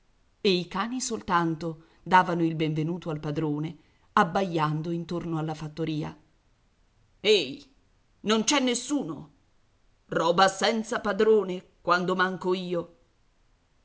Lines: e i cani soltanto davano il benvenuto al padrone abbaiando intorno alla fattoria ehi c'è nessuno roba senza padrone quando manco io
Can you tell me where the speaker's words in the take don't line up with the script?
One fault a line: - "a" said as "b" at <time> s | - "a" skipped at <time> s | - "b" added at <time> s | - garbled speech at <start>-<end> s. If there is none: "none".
- "non" added at 8.2 s